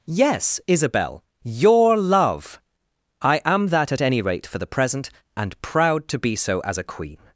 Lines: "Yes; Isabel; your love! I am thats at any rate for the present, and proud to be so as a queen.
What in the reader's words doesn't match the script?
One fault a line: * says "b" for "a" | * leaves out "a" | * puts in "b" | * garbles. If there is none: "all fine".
* says "that" for "thats"